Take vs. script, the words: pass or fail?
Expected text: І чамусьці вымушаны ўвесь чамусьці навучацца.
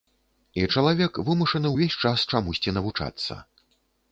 fail